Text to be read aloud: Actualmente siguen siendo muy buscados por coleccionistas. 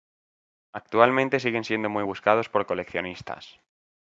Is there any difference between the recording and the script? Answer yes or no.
no